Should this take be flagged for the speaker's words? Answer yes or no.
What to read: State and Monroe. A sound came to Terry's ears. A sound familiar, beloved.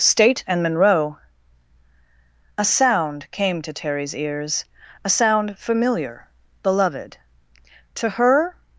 yes